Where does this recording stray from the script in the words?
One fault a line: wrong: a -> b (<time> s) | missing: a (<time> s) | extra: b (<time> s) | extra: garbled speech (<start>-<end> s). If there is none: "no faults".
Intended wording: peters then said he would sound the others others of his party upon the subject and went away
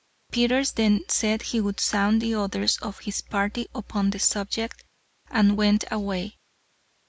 missing: others (2.8 s)